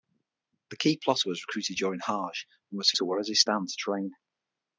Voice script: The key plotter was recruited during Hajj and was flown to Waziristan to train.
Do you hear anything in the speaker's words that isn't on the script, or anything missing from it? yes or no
yes